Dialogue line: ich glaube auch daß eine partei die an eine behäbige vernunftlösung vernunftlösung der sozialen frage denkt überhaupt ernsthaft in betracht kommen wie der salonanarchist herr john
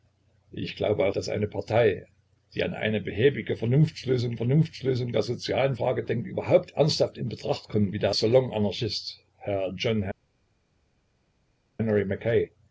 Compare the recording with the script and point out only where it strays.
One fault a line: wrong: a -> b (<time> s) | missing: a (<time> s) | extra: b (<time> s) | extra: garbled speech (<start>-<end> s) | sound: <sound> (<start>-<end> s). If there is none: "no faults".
no faults